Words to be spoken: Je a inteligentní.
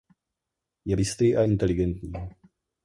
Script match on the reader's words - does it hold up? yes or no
no